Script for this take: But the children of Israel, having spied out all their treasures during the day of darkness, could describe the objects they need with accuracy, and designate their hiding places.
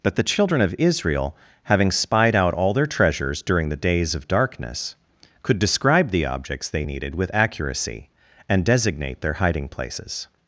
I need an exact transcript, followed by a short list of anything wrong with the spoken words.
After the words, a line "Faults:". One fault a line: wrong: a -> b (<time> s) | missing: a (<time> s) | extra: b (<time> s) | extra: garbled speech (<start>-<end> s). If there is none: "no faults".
But the children of Israel, having spied out all their treasures during the days of darkness, could describe the objects they needed with accuracy, and designate their hiding places.
Faults:
wrong: day -> days (3.8 s)
wrong: need -> needed (6.8 s)